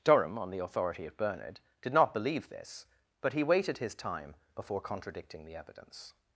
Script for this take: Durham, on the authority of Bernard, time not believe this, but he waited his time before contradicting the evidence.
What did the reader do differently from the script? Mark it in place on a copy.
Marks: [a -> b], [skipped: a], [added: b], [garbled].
Durham, on the authority of Bernard, [time -> did] not believe this, but he waited his time before contradicting the evidence.